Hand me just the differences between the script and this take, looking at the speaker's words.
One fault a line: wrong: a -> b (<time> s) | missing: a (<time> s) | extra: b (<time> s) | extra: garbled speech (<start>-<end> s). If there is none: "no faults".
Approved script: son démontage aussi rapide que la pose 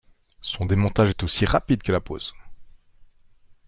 extra: est (1.1 s)